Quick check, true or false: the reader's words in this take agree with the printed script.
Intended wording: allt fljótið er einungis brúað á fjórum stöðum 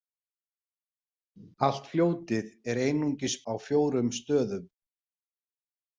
false